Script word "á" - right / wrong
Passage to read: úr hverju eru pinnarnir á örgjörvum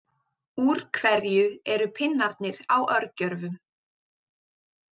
right